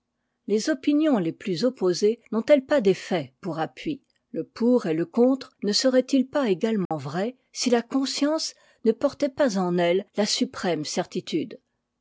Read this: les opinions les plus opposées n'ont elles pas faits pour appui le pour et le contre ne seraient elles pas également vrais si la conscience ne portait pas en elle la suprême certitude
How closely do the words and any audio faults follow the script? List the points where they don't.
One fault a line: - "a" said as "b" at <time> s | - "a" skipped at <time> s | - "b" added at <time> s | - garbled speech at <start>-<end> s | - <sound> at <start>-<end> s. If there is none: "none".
- "des" added at 2.8 s
- "elles" said as "ils" at 6.1 s
- dropout at 6.9-6.9 s